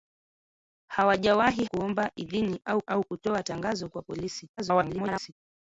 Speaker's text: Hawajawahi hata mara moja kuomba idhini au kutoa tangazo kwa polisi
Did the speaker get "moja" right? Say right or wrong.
wrong